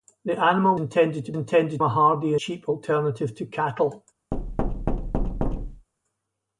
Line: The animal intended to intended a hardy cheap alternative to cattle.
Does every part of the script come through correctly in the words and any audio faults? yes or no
no